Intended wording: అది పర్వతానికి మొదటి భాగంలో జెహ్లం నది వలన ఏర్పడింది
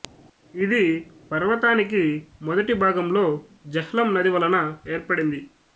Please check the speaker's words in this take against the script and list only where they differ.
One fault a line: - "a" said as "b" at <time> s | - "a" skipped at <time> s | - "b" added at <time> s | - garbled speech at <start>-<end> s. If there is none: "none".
- "అది" said as "ఇది" at 0.5 s